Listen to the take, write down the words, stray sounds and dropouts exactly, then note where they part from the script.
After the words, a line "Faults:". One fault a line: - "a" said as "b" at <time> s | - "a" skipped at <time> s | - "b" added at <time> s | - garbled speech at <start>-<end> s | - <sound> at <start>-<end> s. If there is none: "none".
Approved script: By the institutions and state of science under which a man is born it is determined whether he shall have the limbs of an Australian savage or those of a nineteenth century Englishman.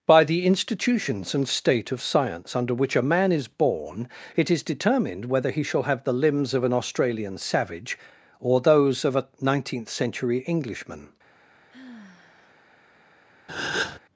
By the institutions and state of science under which a man is born it is determined whether he shall have the limbs of an Australian savage or those of a nineteenth century Englishman.
Faults:
- sigh at 11.7-12.7 s
- breath at 13.5-14.0 s